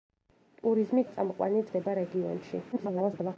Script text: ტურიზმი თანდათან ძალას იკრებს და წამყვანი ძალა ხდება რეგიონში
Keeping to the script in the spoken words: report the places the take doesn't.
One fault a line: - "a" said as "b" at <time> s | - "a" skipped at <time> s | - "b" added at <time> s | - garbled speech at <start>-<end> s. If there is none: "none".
- "თანდათან ძალას იკრებს" skipped at 1.0 s
- "ძალა" skipped at 1.7 s
- garbled speech at 2.7-3.4 s